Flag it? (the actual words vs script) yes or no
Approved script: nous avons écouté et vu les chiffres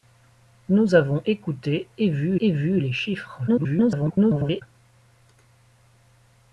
yes